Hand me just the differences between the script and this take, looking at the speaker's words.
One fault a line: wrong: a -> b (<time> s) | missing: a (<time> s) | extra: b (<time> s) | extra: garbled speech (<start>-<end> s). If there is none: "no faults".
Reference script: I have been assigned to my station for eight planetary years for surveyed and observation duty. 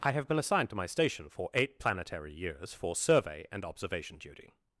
wrong: surveyed -> survey (3.0 s)